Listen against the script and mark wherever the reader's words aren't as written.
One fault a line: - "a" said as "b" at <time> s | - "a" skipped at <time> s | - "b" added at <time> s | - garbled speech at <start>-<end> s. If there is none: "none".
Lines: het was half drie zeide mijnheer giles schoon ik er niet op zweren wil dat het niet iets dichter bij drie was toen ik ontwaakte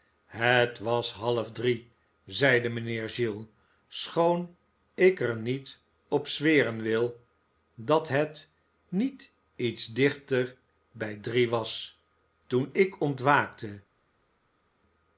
none